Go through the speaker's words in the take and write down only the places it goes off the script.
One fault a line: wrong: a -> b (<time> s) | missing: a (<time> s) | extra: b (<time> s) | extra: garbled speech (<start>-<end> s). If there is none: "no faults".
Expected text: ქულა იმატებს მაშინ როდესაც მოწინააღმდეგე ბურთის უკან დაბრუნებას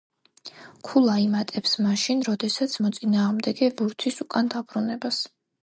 no faults